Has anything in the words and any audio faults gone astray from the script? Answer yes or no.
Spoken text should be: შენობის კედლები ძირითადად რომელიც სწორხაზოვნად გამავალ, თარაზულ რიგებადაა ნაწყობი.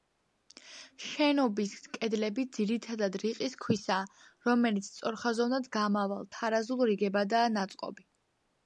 yes